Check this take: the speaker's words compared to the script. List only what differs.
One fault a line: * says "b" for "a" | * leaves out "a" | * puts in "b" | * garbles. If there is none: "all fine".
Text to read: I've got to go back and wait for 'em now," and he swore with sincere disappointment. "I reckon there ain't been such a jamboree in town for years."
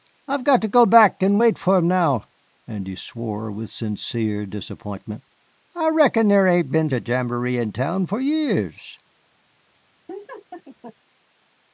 * leaves out "such"